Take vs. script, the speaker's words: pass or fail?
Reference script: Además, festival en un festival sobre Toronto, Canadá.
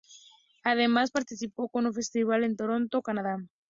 fail